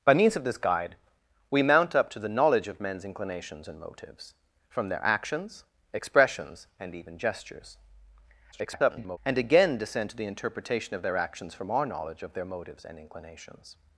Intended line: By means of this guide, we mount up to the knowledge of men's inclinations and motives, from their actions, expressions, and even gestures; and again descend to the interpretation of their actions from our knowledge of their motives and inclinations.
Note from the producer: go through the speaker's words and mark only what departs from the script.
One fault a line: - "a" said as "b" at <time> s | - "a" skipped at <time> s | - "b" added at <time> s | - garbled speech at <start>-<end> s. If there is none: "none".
- garbled speech at 8.5-9.2 s